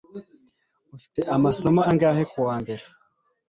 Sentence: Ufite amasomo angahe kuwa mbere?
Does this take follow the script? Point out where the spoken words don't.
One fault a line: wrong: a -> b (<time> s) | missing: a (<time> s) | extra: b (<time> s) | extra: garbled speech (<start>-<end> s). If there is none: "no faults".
no faults